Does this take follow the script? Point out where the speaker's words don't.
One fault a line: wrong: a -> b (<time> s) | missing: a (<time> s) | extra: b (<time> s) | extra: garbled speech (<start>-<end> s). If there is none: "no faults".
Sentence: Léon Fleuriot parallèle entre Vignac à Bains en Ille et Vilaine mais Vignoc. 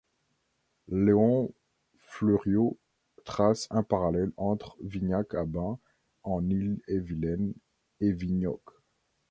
extra: trace un (3.2 s)
wrong: mais -> et (8.0 s)